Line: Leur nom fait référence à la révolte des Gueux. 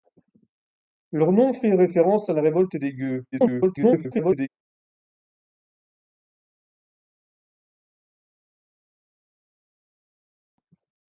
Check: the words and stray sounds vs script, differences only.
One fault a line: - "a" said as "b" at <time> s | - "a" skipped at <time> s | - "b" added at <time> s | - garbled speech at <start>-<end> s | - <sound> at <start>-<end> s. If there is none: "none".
- garbled speech at 3.3-4.5 s